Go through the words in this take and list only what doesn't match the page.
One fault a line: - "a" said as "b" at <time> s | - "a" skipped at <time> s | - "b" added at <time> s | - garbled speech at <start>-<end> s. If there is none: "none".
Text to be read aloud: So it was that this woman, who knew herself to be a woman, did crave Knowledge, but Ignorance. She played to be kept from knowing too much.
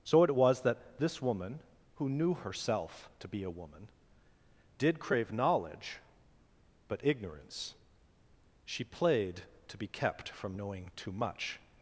none